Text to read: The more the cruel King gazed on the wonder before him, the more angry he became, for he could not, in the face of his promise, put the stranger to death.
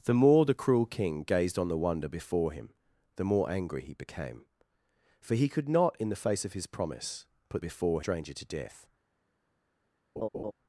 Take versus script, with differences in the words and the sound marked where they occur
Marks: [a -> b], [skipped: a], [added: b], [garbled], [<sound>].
The more the cruel King gazed on the wonder before him, the more angry he became, for he could not, in the face of his promise, put [the -> before] stranger to death. [laugh]